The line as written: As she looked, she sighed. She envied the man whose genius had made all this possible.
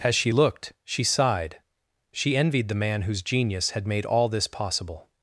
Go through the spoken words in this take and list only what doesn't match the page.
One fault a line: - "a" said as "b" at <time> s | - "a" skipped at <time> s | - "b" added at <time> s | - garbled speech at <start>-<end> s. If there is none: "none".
none